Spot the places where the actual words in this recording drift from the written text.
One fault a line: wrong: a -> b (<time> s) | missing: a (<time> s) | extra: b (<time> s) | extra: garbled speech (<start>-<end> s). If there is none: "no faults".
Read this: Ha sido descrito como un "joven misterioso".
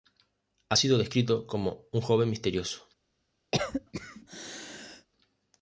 no faults